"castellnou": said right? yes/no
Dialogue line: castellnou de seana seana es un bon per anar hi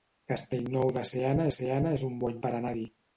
yes